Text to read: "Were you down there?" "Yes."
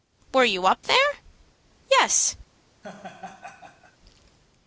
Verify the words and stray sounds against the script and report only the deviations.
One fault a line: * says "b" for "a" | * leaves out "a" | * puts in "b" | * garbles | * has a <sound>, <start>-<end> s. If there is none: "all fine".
* says "up" for "down"
* has a laugh, 2.8-4.0 s